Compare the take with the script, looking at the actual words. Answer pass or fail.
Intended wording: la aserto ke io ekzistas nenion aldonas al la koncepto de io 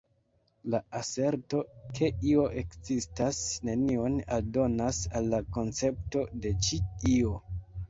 fail